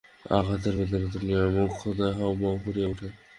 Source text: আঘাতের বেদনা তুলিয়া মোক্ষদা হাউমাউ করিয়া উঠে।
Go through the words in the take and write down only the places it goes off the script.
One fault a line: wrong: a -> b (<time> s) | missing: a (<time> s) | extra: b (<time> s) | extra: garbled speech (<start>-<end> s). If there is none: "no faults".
no faults